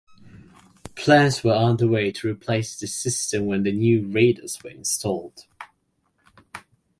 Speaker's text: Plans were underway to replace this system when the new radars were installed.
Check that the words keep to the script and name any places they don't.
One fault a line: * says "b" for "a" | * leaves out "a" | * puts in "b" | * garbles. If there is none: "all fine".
all fine